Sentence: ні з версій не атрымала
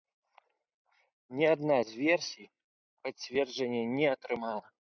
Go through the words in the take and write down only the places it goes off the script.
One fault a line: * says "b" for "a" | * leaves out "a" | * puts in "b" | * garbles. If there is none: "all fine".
* puts in "адна"
* puts in "пацверджання"